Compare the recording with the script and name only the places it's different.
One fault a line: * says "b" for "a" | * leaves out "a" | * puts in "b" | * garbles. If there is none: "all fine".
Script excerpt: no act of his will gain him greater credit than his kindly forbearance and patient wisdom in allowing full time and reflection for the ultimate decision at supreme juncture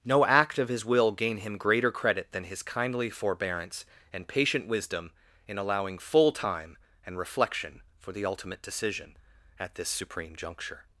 * puts in "this"